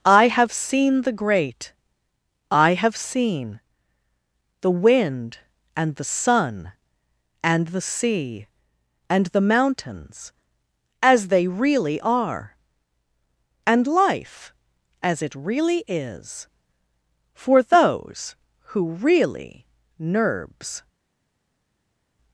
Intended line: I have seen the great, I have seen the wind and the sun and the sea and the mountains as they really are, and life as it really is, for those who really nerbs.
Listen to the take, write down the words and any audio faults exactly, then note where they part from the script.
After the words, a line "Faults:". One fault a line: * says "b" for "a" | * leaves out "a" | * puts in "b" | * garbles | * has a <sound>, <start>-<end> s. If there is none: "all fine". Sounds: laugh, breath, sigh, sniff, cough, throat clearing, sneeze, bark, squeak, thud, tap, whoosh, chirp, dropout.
I have seen the great, I have seen the wind and the sun and the sea and the mountains as they really are, and life as it really is, for those who really nerbs.
Faults:
all fine